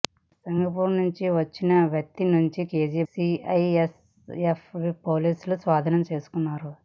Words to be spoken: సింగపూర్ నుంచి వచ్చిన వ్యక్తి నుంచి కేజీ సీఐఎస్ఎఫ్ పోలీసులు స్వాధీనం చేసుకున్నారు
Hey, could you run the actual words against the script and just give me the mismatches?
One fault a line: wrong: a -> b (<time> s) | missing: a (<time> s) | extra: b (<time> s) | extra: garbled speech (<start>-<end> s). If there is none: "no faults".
no faults